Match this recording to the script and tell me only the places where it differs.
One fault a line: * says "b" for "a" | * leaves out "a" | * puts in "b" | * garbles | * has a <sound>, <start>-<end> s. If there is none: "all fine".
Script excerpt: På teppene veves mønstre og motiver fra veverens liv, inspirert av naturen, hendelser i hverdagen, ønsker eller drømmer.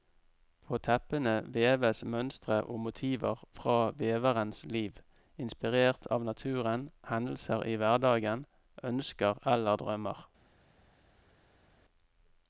all fine